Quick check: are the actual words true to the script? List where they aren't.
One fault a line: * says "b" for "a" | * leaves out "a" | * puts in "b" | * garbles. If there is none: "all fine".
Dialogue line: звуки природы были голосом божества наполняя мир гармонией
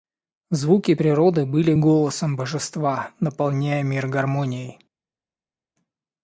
all fine